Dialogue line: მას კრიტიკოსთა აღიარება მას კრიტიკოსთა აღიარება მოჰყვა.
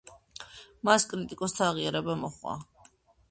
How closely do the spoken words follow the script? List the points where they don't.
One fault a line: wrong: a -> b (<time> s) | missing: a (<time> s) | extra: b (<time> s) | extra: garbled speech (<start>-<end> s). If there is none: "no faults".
missing: მას კრიტიკოსთა აღიარება (2.2 s)